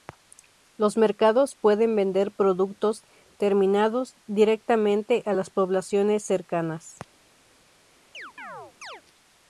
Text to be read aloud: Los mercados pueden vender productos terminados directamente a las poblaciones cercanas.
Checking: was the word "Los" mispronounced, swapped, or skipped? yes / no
no